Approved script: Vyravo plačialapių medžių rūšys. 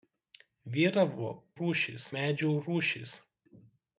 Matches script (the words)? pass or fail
fail